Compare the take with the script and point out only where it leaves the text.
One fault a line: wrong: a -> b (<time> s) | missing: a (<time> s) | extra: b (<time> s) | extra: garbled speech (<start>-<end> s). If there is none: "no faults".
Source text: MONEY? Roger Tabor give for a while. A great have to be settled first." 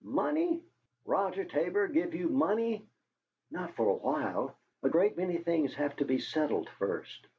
extra: you MONEY Not (2.1 s)
extra: many things (5.2 s)